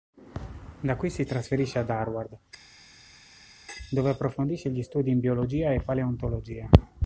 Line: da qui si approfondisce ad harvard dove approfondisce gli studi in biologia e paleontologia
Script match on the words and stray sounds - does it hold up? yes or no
no